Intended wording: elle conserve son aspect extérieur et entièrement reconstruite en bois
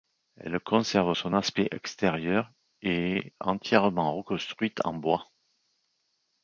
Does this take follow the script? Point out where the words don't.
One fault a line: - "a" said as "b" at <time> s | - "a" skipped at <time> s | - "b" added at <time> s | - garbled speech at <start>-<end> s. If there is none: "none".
- "est" added at 3.2 s